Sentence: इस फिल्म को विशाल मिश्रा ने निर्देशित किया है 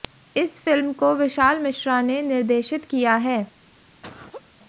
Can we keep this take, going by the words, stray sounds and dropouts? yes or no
no